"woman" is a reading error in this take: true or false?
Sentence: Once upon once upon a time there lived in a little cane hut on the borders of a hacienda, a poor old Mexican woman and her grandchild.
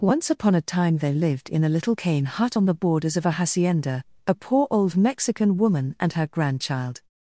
false